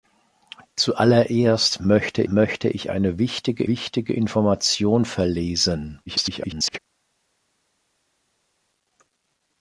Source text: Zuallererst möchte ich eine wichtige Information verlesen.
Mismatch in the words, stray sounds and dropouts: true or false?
true